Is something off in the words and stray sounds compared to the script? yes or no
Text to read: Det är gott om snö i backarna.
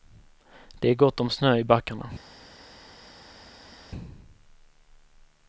no